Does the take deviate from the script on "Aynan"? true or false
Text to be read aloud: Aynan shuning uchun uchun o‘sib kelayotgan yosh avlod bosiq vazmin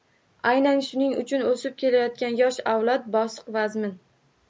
false